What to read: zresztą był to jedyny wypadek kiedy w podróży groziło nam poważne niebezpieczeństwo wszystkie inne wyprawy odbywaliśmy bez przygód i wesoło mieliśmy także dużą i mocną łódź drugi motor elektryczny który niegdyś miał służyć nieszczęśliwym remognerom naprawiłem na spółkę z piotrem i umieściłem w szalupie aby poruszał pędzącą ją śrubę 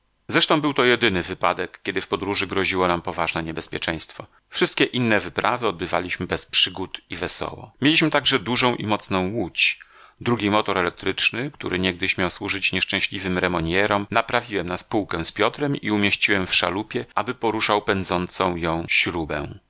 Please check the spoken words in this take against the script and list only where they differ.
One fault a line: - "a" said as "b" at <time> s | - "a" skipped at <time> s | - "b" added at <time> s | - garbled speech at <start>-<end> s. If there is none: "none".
none